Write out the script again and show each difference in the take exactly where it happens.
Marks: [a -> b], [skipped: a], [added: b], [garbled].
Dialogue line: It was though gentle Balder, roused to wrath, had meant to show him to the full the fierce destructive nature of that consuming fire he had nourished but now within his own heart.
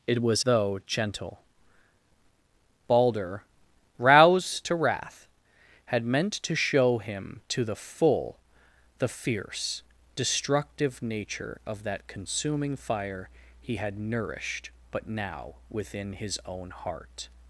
It was though gentle Balder, roused to wrath, had meant to show him to the full the fierce destructive nature of that consuming fire he had nourished but now within his own heart.